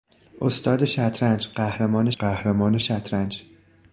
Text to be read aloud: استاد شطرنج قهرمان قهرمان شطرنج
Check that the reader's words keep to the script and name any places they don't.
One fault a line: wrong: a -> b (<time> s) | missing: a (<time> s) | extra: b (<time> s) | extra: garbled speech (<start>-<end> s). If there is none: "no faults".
no faults